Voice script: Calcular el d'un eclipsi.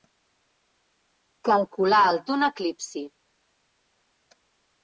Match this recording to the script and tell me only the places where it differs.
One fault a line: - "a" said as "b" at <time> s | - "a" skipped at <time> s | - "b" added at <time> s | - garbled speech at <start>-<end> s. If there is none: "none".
none